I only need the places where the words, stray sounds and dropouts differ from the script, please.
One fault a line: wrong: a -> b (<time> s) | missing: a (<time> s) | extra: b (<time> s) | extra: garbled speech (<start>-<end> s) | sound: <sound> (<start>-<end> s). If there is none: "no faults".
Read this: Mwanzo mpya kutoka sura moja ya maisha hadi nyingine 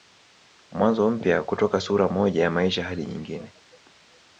no faults